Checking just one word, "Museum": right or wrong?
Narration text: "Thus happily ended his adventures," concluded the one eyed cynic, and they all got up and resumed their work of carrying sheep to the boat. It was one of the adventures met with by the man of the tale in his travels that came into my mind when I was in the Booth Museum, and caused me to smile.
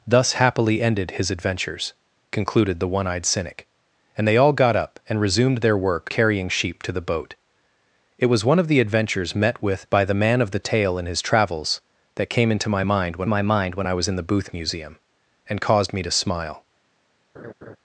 right